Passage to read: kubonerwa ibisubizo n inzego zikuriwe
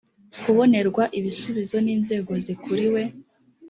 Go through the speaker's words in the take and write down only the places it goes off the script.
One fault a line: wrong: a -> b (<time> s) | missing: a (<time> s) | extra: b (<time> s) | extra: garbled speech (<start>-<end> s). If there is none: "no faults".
no faults